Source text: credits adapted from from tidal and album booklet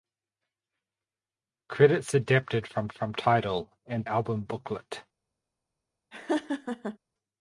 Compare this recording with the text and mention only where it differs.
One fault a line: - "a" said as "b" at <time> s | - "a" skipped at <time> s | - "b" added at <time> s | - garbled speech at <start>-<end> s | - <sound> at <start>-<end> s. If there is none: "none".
- laugh at 6.1-7.0 s